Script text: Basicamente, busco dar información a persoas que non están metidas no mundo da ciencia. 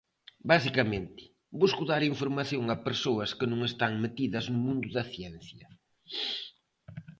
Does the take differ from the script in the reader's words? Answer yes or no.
no